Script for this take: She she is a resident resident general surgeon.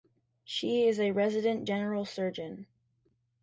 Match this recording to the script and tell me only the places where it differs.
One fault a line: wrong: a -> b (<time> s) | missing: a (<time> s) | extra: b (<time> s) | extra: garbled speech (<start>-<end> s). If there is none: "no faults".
missing: she (0.9 s)
missing: resident (1.7 s)